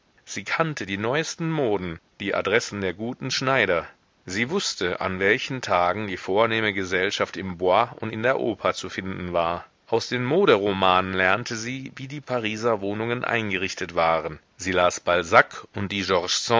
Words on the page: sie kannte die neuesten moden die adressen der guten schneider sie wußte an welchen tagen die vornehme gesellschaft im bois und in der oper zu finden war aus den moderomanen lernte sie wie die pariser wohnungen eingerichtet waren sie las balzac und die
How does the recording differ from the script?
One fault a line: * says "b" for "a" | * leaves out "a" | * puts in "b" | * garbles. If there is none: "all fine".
all fine